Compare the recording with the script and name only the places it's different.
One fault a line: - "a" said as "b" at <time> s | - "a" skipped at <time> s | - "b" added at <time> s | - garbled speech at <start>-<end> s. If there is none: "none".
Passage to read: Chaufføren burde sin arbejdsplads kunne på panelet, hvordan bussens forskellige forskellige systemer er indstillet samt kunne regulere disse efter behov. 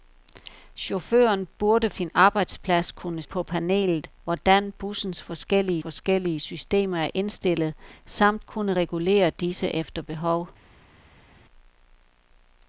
none